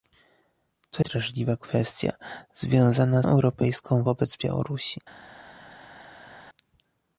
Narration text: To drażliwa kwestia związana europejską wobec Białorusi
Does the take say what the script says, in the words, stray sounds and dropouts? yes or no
yes